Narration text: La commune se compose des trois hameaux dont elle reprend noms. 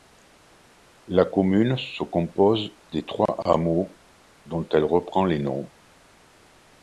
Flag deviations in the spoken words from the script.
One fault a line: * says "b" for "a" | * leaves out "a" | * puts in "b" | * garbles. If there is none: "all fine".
* puts in "les"